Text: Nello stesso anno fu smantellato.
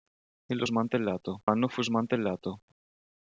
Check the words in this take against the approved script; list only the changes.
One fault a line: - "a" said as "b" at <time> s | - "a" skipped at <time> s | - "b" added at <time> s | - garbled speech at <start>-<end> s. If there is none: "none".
- "stesso" said as "smantellato" at 0.6 s